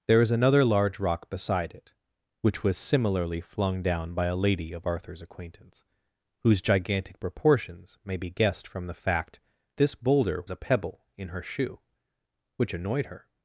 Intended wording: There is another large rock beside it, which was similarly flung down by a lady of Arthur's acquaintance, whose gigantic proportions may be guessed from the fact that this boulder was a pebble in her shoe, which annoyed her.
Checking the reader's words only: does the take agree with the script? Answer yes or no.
no